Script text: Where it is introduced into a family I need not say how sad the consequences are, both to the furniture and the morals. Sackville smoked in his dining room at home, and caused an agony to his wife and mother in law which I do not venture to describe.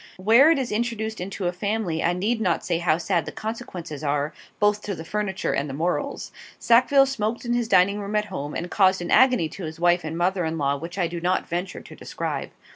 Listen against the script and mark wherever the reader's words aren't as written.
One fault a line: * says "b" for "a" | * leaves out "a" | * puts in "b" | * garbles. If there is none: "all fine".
all fine